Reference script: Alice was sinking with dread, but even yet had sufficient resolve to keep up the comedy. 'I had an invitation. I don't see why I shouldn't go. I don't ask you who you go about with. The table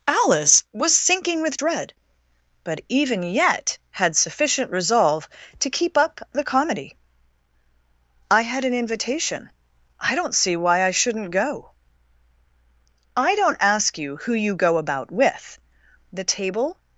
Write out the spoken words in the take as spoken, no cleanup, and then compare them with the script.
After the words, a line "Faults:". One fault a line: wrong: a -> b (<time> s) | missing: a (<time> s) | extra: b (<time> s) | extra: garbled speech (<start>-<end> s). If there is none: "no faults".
Alice was sinking with dread, but even yet had sufficient resolve to keep up the comedy. 'I had an invitation. I don't see why I shouldn't go. I don't ask you who you go about with. The table
Faults:
no faults